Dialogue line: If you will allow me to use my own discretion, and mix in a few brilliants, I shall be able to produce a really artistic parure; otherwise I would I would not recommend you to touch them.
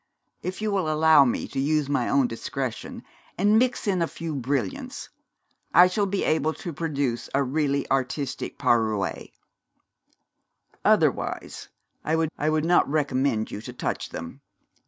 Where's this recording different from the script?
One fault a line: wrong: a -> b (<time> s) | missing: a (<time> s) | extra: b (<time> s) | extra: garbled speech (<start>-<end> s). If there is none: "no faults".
no faults